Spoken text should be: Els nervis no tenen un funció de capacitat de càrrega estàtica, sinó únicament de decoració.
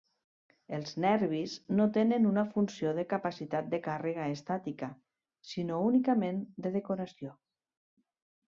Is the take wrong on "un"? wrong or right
wrong